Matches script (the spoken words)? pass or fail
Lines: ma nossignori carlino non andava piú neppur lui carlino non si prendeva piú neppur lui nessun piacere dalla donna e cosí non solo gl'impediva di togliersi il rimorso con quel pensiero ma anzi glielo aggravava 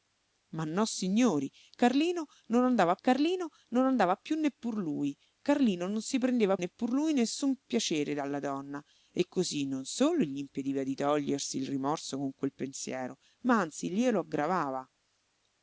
fail